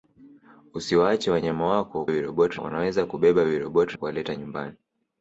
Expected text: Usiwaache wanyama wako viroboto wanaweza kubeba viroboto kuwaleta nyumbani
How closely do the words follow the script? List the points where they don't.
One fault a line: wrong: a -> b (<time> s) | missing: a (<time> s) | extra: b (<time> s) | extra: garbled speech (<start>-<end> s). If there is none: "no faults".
no faults